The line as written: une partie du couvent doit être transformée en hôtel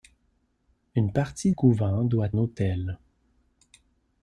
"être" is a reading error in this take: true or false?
true